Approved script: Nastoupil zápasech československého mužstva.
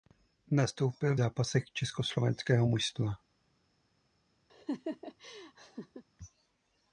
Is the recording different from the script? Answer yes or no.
no